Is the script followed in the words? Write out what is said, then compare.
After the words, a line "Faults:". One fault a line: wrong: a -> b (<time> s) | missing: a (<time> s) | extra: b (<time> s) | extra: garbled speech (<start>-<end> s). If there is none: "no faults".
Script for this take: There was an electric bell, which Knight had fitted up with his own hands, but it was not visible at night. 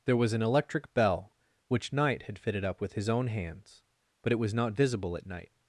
There was an electric bell, which Knight had fitted up with his own hands, but it was not visible at night.
Faults:
no faults